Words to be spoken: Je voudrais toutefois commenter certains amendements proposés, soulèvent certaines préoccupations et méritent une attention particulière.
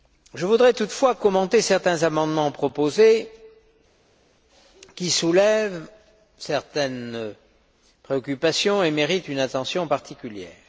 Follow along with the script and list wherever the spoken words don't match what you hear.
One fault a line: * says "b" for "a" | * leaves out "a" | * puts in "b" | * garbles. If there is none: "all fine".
* puts in "qui"